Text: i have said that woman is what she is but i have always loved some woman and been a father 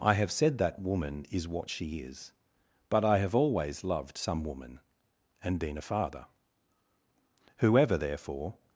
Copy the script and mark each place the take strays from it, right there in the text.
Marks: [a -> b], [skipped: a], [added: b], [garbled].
i have said that woman is what she is but i have always loved some woman and been a father [added: whoever therefore]